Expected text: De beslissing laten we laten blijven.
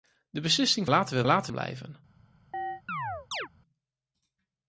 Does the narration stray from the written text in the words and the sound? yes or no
yes